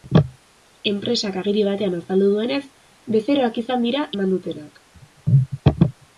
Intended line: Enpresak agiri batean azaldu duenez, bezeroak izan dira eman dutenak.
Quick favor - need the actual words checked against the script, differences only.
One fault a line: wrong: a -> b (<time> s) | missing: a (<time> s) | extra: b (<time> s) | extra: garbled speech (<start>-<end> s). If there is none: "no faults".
no faults